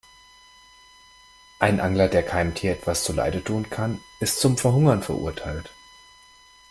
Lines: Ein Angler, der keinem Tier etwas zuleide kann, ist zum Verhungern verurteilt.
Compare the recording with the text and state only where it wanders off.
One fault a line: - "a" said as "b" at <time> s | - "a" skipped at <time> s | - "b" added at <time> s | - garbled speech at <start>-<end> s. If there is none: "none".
- "tun" added at 3.4 s